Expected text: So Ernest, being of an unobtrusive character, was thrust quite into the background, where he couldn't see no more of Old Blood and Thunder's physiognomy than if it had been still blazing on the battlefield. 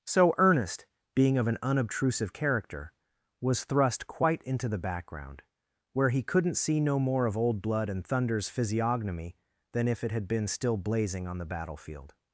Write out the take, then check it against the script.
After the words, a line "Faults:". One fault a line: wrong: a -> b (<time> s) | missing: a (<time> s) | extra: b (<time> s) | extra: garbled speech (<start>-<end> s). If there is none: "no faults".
So Ernest, being of an unobtrusive character, was thrust quite into the background, where he couldn't see no more of Old Blood and Thunder's physiognomy than if it had been still blazing on the battlefield.
Faults:
no faults